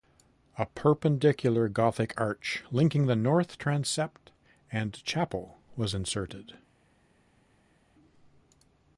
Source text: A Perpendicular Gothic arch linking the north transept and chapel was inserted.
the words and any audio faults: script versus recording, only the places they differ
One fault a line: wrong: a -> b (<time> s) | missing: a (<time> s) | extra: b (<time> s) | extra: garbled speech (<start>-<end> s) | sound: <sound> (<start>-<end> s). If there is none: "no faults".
no faults